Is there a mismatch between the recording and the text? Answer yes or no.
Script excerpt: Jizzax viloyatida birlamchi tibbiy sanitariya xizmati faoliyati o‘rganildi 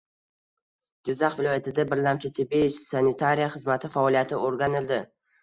no